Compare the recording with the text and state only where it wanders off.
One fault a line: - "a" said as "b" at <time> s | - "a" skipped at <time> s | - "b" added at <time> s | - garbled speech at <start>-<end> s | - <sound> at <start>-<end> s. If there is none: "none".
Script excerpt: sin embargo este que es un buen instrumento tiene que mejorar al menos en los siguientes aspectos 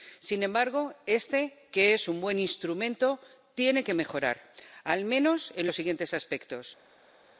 none